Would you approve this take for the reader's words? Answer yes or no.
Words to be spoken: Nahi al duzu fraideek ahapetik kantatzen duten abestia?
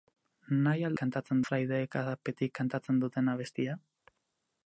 no